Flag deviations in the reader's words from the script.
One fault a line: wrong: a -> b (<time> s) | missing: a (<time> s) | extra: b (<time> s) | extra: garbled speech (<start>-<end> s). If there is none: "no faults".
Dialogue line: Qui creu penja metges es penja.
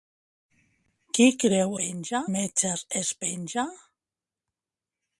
no faults